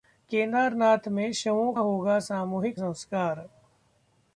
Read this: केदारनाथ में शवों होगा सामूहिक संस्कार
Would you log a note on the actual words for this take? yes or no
no